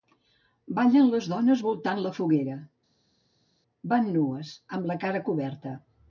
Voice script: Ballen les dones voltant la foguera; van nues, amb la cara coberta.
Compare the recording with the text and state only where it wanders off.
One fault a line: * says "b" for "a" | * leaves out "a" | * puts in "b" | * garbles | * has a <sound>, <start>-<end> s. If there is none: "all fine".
all fine